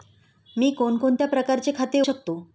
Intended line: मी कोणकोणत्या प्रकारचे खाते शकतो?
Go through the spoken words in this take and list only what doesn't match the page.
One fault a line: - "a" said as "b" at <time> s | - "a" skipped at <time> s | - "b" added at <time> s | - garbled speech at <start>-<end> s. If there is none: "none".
none